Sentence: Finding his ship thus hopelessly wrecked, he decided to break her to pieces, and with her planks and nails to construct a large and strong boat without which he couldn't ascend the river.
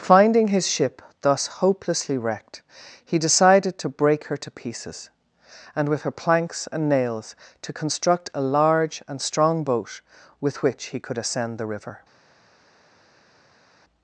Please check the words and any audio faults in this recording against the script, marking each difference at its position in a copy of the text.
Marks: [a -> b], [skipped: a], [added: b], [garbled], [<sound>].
Finding his ship thus hopelessly wrecked, he decided to break her to pieces, and with her planks and nails to construct a large and strong boat [without -> with] which he [couldn't -> could] ascend the river.